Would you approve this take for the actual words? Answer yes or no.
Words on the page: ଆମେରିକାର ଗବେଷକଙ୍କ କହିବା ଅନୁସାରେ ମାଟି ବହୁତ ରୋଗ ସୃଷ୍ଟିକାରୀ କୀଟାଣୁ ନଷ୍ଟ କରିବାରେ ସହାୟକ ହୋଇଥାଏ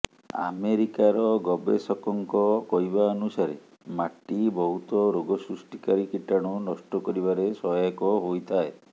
yes